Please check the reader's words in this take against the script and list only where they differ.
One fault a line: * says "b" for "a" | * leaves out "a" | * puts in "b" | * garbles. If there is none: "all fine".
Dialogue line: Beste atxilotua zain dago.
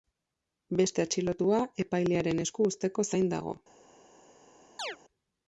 * puts in "epailearen esku uzteko"